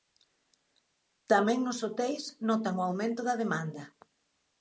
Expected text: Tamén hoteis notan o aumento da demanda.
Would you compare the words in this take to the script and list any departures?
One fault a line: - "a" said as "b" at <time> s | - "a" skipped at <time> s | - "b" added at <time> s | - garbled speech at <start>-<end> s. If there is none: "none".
- "nos" added at 1.6 s